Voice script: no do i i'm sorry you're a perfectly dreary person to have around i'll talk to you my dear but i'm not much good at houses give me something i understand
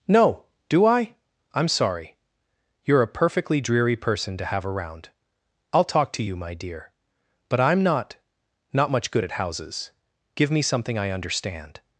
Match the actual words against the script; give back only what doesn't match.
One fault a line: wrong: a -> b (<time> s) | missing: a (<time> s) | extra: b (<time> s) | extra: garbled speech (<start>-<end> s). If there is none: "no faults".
extra: not (8.7 s)